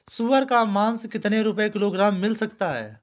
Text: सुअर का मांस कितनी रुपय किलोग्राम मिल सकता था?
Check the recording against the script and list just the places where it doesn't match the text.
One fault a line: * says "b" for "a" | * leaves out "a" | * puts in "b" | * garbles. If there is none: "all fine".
* says "है" for "था"